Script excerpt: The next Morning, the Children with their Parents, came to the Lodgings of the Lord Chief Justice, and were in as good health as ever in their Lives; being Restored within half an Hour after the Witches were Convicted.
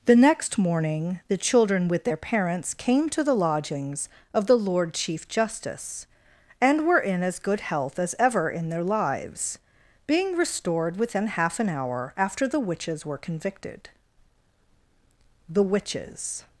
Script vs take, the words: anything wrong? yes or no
yes